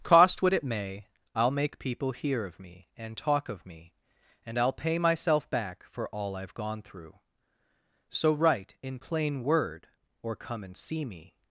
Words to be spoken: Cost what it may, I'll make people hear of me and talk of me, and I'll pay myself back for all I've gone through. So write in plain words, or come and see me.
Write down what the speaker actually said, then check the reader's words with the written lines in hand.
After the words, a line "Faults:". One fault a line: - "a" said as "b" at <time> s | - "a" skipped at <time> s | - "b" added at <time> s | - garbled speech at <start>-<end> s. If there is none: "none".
Cost what it may, I'll make people hear of me and talk of me, and I'll pay myself back for all I've gone through. So write in plain word, or come and see me.
Faults:
- "words" said as "word" at 9.4 s